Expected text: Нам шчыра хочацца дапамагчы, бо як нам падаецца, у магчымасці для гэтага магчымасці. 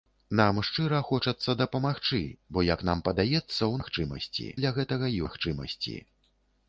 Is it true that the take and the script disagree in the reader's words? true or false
false